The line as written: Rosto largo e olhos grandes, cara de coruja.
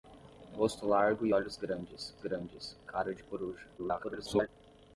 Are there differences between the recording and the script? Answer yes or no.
yes